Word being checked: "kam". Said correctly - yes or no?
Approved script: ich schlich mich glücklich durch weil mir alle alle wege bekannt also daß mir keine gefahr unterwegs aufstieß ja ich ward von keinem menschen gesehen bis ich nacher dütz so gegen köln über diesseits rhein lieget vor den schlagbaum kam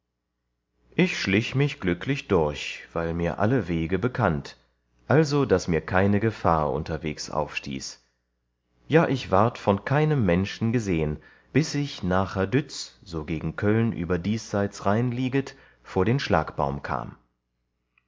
yes